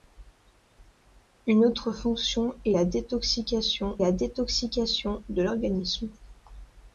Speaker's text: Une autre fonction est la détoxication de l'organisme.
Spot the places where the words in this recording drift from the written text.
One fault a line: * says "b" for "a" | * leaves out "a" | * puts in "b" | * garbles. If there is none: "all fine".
* puts in "la détoxication"